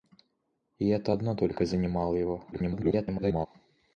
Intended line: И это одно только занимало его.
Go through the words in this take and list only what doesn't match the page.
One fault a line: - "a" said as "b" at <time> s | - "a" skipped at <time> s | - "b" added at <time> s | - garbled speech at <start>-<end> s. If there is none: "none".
- garbled speech at 2.5-3.5 s